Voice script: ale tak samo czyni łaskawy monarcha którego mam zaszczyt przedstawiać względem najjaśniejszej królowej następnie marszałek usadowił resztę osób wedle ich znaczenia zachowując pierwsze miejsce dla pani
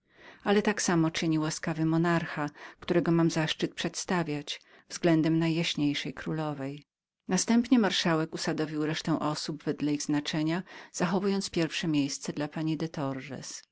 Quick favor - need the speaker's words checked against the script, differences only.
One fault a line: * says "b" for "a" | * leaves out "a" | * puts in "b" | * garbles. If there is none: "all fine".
all fine